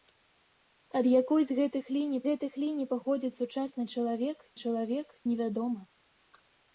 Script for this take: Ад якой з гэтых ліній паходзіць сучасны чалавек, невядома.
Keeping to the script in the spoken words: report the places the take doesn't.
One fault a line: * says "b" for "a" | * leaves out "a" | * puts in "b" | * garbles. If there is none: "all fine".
* puts in "гэтых ліній"
* puts in "чалавек"